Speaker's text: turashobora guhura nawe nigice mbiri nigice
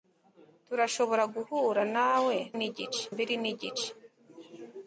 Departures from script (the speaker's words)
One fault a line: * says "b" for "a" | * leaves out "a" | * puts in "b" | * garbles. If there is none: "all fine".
all fine